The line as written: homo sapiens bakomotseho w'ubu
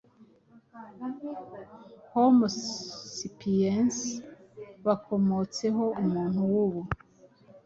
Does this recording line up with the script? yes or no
no